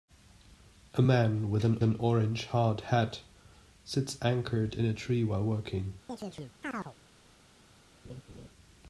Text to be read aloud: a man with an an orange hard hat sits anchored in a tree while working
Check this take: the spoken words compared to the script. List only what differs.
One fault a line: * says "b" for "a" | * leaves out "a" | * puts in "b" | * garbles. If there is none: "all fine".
all fine